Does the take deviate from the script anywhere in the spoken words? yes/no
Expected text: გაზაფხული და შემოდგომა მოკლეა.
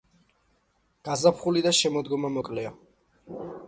no